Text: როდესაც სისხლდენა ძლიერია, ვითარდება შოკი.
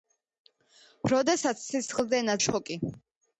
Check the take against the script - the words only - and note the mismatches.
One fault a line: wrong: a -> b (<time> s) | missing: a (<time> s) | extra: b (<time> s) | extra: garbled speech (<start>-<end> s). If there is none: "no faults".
missing: ძლიერია ვითარდება (2.4 s)